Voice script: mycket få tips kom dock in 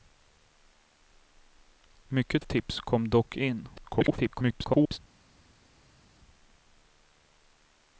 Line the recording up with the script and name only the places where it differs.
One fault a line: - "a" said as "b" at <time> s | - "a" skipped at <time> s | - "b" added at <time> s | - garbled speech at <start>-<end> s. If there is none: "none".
- "få" skipped at 2.5 s
- garbled speech at 3.8-5.0 s